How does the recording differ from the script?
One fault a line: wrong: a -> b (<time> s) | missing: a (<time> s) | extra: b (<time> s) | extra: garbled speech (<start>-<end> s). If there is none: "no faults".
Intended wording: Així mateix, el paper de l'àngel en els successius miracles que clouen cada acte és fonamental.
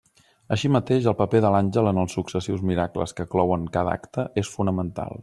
no faults